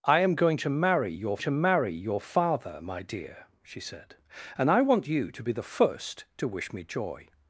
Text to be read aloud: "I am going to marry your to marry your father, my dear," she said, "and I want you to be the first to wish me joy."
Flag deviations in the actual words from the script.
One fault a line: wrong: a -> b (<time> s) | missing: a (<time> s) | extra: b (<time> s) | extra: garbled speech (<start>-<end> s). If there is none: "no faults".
no faults